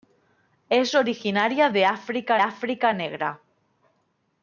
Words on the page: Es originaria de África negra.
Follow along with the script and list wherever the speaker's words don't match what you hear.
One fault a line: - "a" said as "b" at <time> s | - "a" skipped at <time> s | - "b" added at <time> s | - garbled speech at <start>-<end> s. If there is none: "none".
- "África" added at 2.4 s